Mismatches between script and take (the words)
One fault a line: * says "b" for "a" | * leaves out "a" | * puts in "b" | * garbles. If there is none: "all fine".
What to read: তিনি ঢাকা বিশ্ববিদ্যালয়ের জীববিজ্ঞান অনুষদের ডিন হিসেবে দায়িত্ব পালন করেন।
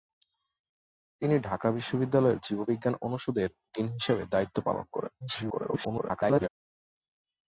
* garbles